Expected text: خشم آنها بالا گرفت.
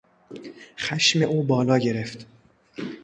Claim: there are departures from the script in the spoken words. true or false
true